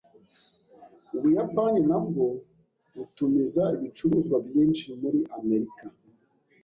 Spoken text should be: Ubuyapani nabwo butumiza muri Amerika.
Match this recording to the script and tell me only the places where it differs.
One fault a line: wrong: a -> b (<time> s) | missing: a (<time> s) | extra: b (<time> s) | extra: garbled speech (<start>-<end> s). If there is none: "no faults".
extra: ibicuruzwa byinshi (3.7 s)